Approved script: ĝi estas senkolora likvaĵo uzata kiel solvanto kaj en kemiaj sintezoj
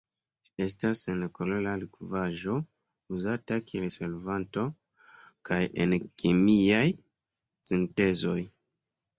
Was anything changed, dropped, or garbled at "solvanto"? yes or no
no